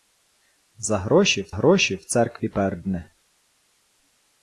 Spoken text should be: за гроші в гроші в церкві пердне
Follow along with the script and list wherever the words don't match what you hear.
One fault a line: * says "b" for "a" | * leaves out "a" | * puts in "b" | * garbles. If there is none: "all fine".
all fine